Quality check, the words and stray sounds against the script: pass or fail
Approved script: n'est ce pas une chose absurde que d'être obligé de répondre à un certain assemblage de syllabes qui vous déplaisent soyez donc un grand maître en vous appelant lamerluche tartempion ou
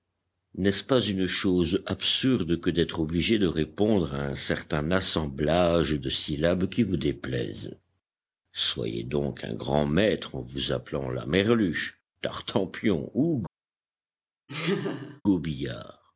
fail